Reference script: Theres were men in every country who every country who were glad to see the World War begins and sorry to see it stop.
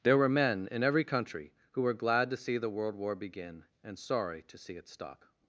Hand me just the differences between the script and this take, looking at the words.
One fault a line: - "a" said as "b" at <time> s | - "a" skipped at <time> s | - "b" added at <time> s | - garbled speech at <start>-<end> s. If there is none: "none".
- "Theres" said as "There" at 0.0 s
- "every country who" skipped at 1.8 s
- "begins" said as "begin" at 3.1 s